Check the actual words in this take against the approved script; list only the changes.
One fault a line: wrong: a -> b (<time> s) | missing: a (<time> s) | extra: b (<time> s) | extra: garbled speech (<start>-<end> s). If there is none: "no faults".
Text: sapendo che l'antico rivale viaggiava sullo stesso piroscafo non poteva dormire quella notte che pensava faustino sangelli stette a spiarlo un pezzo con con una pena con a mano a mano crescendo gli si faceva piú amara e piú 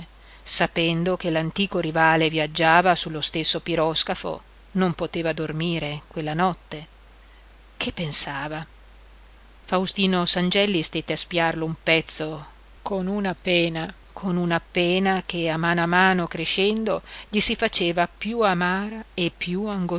extra: una pena (13.1 s)
wrong: con -> che (15.2 s)